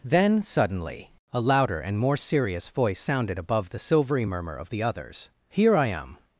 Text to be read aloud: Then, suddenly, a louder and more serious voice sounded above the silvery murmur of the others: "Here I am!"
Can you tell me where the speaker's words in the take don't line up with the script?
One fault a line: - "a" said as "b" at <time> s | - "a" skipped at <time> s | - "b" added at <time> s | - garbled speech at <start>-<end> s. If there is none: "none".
none